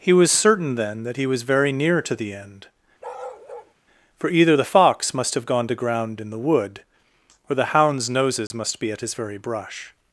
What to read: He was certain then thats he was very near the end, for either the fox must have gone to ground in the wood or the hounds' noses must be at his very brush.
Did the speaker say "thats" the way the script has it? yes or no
no